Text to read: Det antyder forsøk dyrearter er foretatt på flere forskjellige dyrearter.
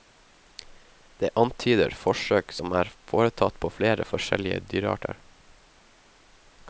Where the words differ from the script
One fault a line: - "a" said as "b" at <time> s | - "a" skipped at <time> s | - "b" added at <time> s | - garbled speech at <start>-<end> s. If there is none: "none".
- "dyrearter" said as "som" at 2.6 s